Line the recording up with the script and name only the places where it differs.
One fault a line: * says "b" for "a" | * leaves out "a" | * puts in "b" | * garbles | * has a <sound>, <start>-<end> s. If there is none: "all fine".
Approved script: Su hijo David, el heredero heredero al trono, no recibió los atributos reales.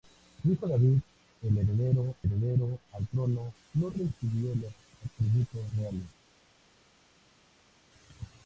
all fine